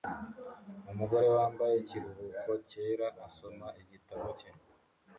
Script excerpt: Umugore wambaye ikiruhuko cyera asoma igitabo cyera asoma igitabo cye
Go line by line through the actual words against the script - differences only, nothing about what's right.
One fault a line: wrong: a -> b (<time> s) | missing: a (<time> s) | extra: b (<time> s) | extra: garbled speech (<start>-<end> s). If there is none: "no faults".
missing: cyera asoma igitabo (4.3 s)